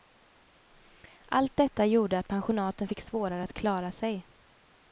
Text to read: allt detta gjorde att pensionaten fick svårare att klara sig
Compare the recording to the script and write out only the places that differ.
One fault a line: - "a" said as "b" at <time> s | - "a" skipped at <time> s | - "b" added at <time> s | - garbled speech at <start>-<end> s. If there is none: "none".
none